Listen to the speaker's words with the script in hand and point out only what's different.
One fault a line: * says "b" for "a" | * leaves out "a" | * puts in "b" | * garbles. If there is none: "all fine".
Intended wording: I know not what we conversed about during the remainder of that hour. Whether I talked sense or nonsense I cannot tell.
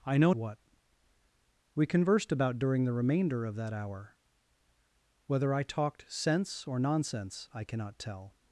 * leaves out "not"